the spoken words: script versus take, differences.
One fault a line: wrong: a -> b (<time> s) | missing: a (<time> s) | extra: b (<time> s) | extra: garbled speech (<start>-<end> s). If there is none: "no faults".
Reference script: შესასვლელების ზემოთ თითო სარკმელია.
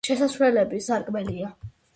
missing: ზემოთ თითო (0.9 s)